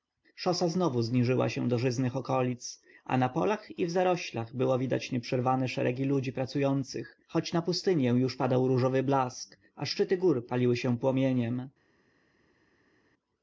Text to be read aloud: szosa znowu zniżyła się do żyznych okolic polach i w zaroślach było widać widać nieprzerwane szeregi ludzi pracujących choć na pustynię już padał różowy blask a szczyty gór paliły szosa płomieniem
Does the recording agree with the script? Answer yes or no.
no